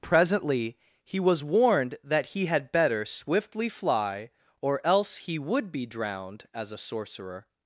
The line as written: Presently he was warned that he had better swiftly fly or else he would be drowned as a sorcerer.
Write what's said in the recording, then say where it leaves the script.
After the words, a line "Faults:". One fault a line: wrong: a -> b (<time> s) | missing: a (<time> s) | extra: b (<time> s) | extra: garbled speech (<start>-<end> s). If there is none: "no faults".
Presently he was warned that he had better swiftly fly or else he would be drowned as a sorcerer.
Faults:
no faults